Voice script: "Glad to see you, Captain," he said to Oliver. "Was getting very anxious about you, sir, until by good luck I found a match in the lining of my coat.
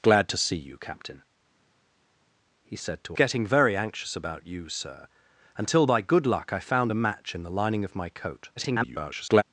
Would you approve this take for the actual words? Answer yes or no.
no